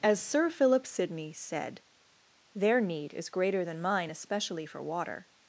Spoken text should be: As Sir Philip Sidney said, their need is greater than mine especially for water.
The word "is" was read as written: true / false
true